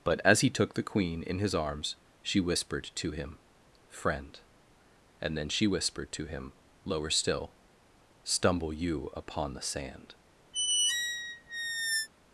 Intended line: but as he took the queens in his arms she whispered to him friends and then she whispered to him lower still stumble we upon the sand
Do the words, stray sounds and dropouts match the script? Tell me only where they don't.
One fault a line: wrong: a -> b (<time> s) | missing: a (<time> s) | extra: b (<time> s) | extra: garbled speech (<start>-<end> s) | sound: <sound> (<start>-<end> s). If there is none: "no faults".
wrong: queens -> queen (0.8 s)
wrong: friends -> friend (3.9 s)
wrong: we -> you (8.7 s)
sound: squeak (10.5-12.1 s)